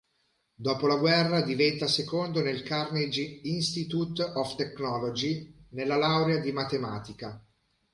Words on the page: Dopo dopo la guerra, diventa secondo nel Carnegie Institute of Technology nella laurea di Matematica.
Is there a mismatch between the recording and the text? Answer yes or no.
yes